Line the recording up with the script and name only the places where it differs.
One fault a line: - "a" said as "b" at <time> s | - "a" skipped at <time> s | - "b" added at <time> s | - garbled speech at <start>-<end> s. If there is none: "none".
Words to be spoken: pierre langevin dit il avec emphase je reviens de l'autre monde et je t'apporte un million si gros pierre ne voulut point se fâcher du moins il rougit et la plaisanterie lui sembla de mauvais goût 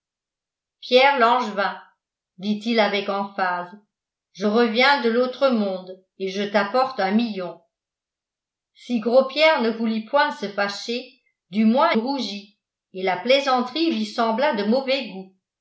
- "il" skipped at 11.9 s